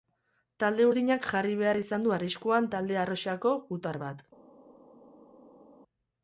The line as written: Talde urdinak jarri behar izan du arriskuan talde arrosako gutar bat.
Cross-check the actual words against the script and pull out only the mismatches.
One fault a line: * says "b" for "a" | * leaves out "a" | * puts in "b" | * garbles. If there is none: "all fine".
all fine